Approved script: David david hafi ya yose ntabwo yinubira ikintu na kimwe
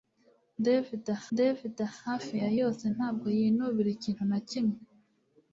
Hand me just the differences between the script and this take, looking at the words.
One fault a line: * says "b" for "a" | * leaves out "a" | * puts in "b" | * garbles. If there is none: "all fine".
all fine